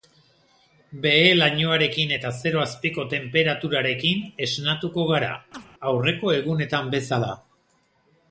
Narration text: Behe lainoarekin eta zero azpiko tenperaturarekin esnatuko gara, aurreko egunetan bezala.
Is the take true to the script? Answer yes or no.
yes